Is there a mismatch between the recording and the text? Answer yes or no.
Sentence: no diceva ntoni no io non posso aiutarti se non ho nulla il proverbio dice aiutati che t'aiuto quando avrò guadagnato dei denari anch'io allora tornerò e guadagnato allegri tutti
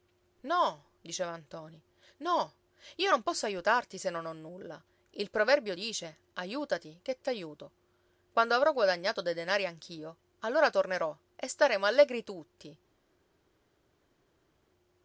yes